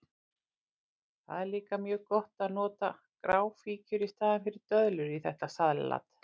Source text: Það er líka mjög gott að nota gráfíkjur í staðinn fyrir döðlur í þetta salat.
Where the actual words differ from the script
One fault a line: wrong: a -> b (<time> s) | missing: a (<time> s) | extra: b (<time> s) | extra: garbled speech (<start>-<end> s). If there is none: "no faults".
no faults